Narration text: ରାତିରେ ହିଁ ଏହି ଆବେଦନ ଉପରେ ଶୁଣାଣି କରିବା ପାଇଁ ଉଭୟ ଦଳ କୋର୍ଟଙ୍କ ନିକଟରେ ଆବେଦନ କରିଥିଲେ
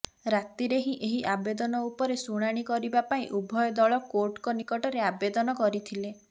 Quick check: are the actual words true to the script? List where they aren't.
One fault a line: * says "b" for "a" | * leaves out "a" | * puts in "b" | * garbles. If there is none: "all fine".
all fine